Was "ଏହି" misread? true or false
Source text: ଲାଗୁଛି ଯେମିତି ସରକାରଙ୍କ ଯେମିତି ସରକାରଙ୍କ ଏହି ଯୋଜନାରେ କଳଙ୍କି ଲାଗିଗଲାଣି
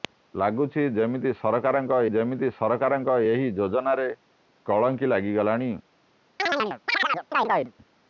false